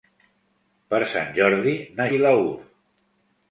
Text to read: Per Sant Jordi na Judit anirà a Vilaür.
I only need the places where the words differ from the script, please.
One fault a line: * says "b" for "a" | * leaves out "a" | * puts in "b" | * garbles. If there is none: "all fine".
* leaves out "Judit anirà a"